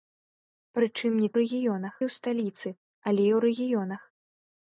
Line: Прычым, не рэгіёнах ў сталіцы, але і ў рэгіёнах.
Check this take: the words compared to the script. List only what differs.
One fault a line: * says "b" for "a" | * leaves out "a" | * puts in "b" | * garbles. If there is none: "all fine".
all fine